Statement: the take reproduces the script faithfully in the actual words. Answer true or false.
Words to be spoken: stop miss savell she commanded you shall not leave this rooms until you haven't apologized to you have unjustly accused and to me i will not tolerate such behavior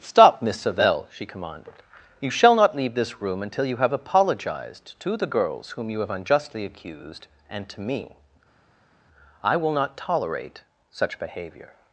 false